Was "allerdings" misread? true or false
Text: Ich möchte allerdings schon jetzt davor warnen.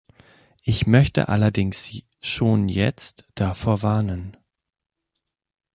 false